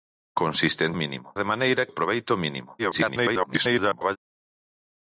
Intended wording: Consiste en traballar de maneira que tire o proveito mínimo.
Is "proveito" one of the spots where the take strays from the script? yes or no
no